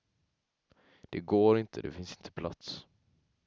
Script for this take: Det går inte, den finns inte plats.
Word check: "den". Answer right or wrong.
wrong